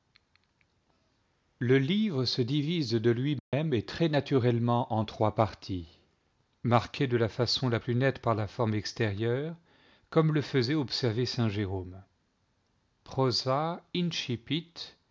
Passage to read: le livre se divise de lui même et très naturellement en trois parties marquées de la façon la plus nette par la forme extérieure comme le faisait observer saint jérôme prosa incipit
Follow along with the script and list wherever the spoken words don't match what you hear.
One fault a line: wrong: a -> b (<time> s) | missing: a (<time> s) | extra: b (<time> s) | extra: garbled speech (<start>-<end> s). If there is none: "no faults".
no faults